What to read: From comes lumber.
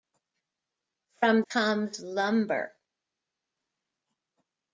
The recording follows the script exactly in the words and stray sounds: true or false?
true